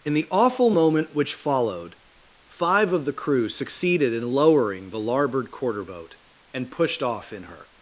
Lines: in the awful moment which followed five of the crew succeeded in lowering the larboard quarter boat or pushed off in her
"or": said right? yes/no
no